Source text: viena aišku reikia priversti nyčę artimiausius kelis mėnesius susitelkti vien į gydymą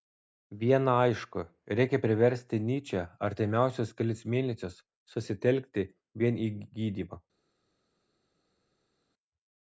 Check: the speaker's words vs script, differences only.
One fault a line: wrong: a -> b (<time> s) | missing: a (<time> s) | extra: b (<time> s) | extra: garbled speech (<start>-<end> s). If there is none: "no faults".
no faults